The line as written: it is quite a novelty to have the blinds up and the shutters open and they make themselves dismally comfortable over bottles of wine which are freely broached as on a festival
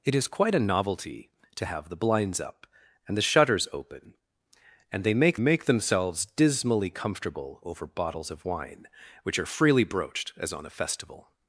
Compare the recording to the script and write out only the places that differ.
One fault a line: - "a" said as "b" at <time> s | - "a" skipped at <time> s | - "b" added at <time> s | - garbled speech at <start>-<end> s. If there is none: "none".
- "make" added at 5.4 s